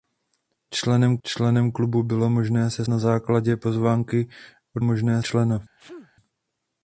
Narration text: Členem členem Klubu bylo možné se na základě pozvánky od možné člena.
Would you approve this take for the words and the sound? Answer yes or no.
no